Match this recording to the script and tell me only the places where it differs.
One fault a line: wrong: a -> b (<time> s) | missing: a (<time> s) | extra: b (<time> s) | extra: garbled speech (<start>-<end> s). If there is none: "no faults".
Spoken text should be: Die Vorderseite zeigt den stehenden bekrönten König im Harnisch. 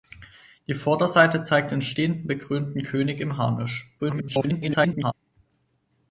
extra: garbled speech (4.0-5.1 s)